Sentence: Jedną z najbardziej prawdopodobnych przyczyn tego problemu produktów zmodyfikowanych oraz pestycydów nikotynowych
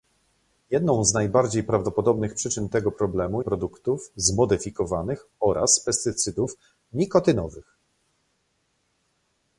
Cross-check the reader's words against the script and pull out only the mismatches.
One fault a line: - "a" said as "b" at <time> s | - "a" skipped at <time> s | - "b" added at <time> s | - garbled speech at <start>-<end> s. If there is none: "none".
none